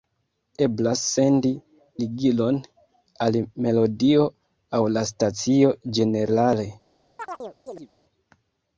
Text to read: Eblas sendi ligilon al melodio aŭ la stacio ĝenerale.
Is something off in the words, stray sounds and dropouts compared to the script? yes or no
yes